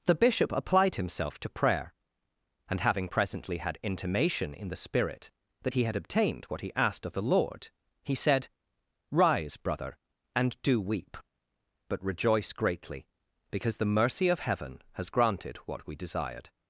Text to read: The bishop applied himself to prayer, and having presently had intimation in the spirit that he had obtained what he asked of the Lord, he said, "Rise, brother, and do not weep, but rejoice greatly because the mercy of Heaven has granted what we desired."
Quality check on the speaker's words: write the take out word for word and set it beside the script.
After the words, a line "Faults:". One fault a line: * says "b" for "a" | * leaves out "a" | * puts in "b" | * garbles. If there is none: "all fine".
The bishop applied himself to prayer, and having presently had intimation in the spirit that he had obtained what he asked of the Lord, he said, "Rise, brother, and do weep, but rejoice greatly because the mercy of Heaven has granted what we desired."
Faults:
* leaves out "not"